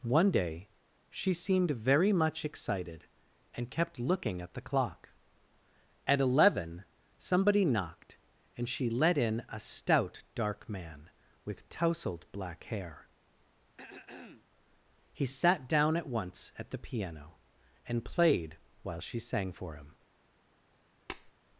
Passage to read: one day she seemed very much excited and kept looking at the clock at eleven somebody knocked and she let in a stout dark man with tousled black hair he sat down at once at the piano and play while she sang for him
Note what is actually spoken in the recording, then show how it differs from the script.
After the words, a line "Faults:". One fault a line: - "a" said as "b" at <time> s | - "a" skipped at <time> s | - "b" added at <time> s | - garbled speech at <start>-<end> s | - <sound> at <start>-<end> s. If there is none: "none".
one day she seemed very much excited and kept looking at the clock at eleven somebody knocked and she let in a stout dark man with tousled black hair he sat down at once at the piano and played while she sang for him
Faults:
- throat clearing at 13.8-14.5 s
- "play" said as "played" at 18.1 s
- tap at 21.1-21.3 s